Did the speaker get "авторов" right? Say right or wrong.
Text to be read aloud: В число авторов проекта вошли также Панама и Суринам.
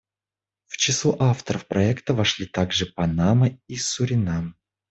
right